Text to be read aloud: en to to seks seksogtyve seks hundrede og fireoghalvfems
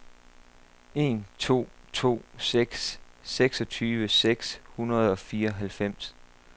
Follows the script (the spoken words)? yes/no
yes